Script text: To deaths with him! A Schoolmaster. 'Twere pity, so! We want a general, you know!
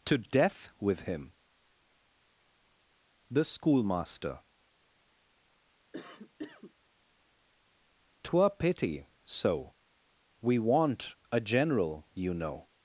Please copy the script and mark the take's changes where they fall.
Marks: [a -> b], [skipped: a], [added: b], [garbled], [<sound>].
To [deaths -> death] with him! [A -> The] Schoolmaster. [cough] 'Twere pity, so! We want a general, you know!